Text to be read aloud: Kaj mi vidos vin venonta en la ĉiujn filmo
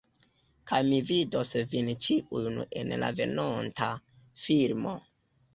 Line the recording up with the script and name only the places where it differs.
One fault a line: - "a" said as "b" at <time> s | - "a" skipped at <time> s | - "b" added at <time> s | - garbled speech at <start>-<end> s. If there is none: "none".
- "venonta" said as "ĉiujn" at 2.1 s
- "ĉiujn" said as "venonta" at 3.2 s